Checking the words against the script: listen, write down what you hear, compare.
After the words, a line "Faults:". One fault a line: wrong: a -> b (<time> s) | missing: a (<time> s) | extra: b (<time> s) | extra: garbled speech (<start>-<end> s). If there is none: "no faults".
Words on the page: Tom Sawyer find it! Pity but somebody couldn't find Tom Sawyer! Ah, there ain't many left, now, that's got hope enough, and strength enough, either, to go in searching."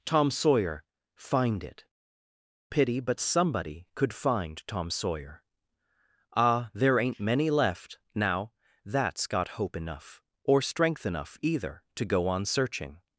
Tom Sawyer find it! Pity but somebody could find Tom Sawyer! Ah, there ain't many left, now, that's got hope enough, or strength enough, either, to go on searching."
Faults:
wrong: couldn't -> could (4.0 s)
wrong: and -> or (10.4 s)
wrong: in -> on (12.3 s)